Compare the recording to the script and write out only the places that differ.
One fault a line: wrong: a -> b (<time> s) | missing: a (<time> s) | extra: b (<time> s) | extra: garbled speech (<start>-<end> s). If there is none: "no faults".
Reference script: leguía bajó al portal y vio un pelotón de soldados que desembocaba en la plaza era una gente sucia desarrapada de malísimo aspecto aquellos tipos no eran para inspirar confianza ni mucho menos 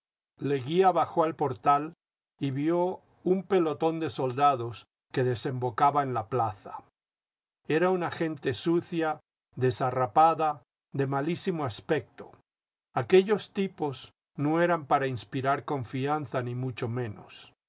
no faults